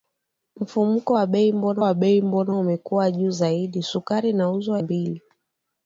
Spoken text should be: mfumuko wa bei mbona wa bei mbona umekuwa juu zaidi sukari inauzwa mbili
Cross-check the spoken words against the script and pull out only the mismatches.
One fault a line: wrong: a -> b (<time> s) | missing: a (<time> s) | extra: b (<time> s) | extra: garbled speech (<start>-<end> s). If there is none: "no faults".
no faults